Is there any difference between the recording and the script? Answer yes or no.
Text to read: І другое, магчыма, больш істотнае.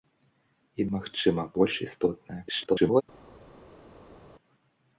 yes